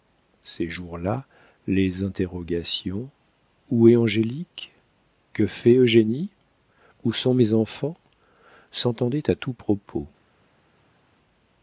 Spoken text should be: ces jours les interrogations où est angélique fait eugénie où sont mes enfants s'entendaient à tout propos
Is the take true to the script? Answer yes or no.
no